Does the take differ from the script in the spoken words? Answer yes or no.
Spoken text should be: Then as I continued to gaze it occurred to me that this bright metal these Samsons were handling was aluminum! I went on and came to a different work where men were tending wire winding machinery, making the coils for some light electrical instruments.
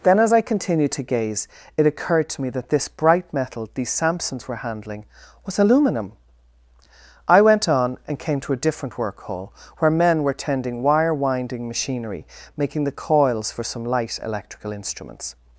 yes